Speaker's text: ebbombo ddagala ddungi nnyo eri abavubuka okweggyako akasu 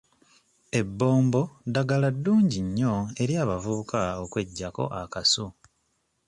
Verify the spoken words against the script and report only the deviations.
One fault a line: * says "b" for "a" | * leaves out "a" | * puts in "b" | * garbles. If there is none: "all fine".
all fine